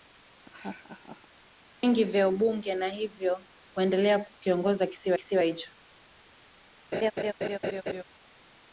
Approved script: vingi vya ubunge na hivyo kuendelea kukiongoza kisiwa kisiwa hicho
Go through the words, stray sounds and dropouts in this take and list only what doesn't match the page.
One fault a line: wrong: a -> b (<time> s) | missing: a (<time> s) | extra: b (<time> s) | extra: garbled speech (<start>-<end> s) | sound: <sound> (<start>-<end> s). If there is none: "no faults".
sound: laugh (0.4-1.3 s)
sound: laugh (6.9-8.0 s)